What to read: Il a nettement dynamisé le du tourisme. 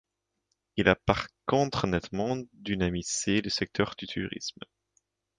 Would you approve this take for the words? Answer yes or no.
no